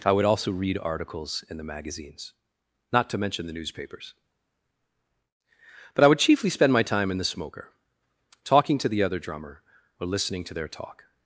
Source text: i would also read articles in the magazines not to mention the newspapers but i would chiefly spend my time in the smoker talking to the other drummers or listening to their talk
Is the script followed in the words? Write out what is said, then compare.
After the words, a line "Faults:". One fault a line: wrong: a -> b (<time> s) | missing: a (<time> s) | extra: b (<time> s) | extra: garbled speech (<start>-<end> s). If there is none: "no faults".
i would also read articles in the magazines not to mention the newspapers but i would chiefly spend my time in the smoker talking to the other drummer or listening to their talk
Faults:
wrong: drummers -> drummer (9.2 s)